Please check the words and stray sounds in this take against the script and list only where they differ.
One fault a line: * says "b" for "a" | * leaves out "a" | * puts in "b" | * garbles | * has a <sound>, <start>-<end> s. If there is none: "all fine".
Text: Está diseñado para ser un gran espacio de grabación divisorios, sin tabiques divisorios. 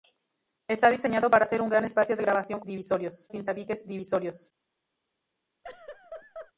* has a laugh, 5.6-6.5 s